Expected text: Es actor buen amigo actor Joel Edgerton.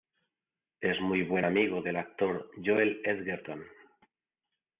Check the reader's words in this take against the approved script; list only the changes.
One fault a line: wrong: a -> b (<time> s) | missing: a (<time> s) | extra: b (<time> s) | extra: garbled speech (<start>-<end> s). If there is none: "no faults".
wrong: actor -> muy (1.0 s)
extra: del (1.8 s)